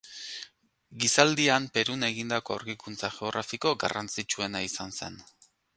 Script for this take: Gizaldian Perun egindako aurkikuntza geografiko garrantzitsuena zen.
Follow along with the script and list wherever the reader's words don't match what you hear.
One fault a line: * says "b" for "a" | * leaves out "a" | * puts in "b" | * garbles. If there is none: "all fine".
* puts in "izan"